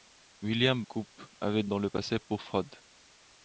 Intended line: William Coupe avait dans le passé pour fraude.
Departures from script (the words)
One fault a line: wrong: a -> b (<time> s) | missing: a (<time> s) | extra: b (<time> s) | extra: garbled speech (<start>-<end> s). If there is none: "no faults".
no faults